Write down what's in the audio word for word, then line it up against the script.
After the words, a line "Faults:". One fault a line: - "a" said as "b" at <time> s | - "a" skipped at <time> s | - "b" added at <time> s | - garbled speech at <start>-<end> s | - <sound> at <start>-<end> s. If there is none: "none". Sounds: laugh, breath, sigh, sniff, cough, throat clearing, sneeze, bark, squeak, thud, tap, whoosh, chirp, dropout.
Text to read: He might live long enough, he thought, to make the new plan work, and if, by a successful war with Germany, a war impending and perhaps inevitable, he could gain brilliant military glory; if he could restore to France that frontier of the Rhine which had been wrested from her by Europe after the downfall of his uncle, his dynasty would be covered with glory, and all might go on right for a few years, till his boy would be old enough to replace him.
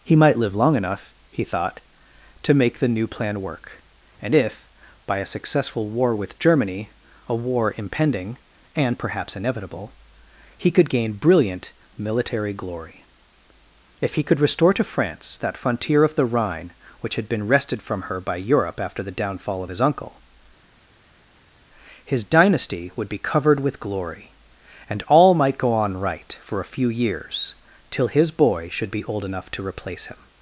He might live long enough, he thought, to make the new plan work, and if, by a successful war with Germany, a war impending and perhaps inevitable, he could gain brilliant military glory; if he could restore to France that frontier of the Rhine which had been wrested from her by Europe after the downfall of his uncle, his dynasty would be covered with glory, and all might go on right for a few years, till his boy should be old enough to replace him.
Faults:
- "would" said as "should" at 28.7 s